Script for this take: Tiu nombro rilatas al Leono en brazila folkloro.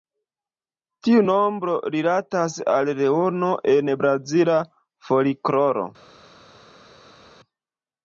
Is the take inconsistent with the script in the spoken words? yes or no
no